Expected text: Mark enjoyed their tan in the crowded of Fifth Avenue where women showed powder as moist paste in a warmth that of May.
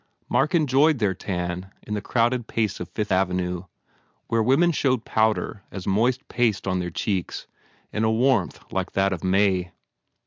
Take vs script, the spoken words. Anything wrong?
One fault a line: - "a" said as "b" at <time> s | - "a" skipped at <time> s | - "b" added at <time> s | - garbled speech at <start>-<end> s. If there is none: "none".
- "pace" added at 2.5 s
- "on their cheeks" added at 6.7 s
- "like" added at 8.7 s